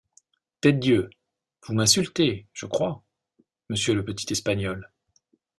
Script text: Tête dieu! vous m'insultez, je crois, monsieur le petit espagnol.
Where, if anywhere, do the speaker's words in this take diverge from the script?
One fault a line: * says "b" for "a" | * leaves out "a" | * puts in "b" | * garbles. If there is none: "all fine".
all fine